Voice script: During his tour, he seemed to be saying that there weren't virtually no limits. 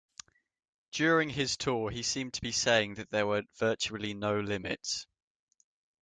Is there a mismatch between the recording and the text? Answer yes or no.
yes